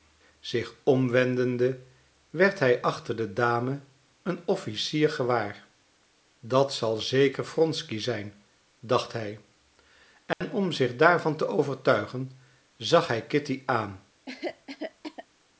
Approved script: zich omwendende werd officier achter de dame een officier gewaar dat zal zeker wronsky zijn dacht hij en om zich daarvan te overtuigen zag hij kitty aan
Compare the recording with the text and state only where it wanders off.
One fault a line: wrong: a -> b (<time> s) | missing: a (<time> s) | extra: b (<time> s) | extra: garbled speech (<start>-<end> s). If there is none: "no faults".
wrong: officier -> hij (2.6 s)